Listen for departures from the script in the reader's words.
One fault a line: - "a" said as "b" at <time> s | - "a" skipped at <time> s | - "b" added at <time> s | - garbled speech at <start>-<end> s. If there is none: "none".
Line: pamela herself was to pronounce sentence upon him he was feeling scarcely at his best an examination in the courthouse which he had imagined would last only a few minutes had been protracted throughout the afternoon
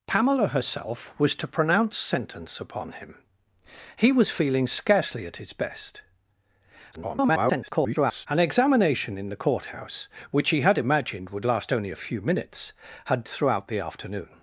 - garbled speech at 6.9-8.3 s
- "been protracted" skipped at 13.2 s